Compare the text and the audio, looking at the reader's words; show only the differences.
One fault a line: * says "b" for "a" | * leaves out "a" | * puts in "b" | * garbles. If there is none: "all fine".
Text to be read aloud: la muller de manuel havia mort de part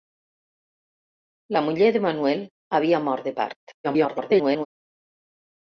* garbles